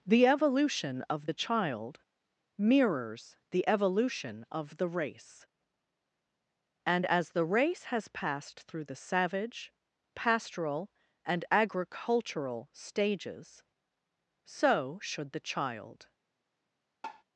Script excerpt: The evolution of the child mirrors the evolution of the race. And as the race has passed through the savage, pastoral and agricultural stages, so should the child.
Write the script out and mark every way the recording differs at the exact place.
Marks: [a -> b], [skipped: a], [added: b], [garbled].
The evolution of the child mirrors the evolution of the race. And as the race has passed through the savage, pastoral and agricultural stages, so should the child.